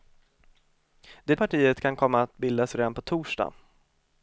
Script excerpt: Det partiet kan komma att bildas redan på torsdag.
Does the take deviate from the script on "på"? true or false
false